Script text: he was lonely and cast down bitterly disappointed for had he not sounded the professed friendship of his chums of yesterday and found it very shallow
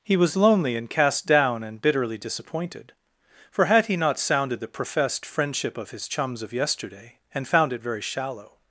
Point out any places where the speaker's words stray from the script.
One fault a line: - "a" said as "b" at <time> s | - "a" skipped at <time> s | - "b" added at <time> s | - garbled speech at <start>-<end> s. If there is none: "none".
- "and" added at 1.6 s